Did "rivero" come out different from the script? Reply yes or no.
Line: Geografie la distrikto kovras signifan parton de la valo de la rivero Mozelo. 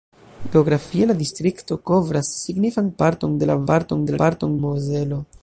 yes